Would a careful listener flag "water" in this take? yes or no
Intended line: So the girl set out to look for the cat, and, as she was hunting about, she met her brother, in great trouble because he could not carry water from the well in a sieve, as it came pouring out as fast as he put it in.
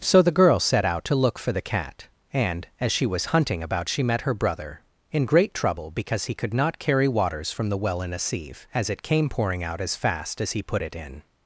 yes